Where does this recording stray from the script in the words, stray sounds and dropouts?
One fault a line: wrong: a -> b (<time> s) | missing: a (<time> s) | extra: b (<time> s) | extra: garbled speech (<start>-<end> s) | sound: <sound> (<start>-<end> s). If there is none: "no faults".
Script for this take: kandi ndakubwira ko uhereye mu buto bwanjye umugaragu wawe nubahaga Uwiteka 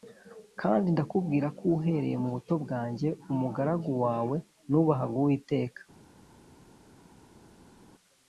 no faults